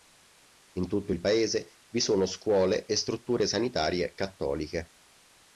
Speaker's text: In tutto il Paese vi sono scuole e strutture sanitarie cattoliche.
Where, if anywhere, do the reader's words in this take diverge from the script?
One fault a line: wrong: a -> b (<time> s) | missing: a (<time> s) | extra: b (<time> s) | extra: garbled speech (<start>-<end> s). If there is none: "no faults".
no faults